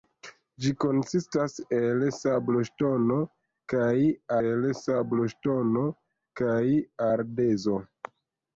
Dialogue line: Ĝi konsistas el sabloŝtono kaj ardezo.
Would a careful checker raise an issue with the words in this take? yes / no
yes